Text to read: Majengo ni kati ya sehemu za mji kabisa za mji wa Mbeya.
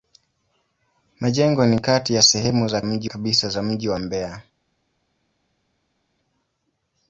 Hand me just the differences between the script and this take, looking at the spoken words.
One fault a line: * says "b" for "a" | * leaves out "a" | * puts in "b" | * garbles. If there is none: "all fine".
all fine